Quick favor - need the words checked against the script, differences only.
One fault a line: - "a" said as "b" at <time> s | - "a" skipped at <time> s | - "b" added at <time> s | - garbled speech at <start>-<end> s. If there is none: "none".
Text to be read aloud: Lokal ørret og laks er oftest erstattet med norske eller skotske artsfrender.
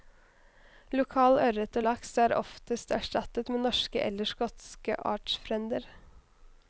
none